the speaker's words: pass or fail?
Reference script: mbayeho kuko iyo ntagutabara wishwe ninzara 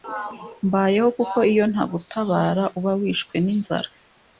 fail